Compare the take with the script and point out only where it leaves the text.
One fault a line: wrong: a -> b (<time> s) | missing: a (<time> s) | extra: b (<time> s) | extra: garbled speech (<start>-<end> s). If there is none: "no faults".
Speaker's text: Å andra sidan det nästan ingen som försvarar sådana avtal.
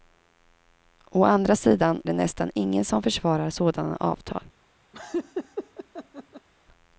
no faults